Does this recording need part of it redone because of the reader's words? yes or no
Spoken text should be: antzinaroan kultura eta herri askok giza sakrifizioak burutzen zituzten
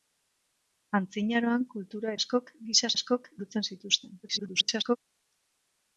yes